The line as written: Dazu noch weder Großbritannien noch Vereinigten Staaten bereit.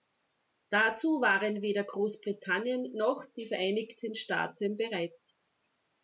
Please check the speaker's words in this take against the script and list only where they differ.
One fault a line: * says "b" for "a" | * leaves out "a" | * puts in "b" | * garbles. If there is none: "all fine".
* says "waren" for "noch"
* puts in "die"